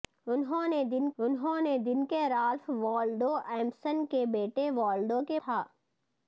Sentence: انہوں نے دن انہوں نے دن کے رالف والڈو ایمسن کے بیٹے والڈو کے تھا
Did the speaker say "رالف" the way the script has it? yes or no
yes